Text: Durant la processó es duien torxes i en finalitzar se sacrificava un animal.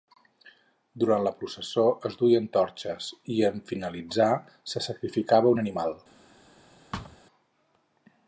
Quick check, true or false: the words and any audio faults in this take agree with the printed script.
false